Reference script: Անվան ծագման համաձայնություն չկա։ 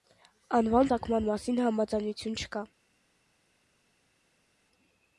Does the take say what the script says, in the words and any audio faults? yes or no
no